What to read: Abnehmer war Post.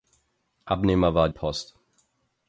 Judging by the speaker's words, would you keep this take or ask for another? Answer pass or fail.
pass